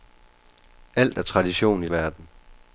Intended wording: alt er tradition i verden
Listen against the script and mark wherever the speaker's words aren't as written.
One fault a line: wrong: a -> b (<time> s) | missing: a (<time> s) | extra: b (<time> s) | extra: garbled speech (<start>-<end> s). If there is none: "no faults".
no faults